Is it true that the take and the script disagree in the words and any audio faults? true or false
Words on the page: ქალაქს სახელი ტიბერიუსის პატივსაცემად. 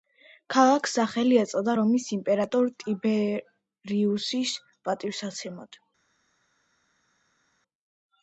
true